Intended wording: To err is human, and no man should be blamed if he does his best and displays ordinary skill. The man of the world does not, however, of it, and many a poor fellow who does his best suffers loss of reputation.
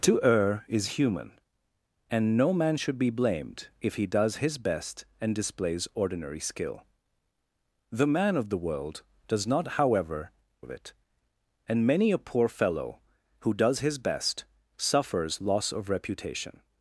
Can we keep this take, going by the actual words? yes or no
yes